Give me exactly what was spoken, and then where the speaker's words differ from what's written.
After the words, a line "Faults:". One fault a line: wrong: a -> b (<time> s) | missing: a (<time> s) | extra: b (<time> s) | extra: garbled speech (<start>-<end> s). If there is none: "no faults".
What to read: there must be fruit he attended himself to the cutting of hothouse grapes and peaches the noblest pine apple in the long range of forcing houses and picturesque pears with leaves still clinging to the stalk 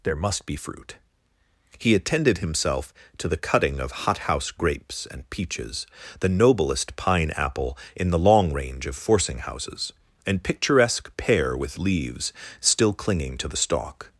there must be fruit he attended himself to the cutting of hothouse grapes and peaches the noblest pine apple in the long range of forcing houses and picturesque pear with leaves still clinging to the stalk
Faults:
wrong: pears -> pear (11.2 s)